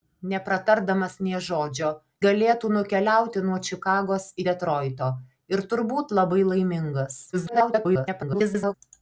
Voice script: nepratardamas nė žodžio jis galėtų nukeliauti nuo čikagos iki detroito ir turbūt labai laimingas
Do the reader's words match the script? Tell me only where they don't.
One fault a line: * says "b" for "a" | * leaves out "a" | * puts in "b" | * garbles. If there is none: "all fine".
* leaves out "jis"
* leaves out "iki"
* garbles